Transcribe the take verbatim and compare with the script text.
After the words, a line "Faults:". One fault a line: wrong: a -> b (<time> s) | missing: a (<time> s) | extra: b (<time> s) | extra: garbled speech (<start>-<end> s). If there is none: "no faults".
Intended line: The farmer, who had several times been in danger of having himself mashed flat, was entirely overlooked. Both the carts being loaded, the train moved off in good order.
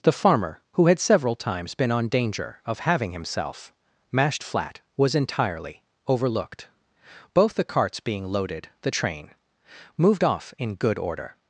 The farmer, who had several times been on danger of having himself mashed flat, was entirely overlooked. Both the carts being loaded, the train moved off in good order.
Faults:
wrong: in -> on (1.9 s)